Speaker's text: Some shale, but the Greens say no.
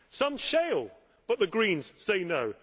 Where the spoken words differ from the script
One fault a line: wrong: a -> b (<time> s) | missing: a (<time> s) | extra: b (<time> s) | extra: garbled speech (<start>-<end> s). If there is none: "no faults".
no faults